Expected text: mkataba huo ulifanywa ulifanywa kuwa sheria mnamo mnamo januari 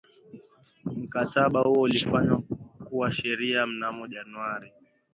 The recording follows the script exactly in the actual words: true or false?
false